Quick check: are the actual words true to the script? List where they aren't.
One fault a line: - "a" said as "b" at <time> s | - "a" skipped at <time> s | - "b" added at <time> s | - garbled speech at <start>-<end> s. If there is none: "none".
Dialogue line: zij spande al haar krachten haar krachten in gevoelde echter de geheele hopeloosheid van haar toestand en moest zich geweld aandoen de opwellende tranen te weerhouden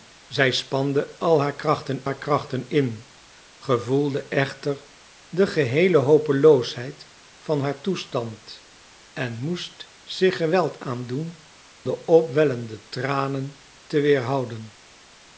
none